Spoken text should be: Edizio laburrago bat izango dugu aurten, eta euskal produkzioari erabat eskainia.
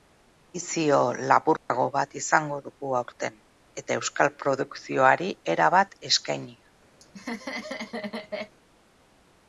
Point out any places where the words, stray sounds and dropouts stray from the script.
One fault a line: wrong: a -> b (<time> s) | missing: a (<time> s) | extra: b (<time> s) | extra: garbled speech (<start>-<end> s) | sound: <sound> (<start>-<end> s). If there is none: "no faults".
sound: dropout (1.6-1.7 s)
sound: laugh (7.0-8.5 s)